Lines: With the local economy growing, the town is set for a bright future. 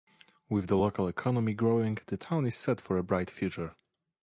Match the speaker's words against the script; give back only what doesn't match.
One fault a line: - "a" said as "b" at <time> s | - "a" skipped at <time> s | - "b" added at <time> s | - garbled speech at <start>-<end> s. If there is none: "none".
none